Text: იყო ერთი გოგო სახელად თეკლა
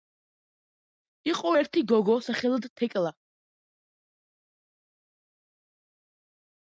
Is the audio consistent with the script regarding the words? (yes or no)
yes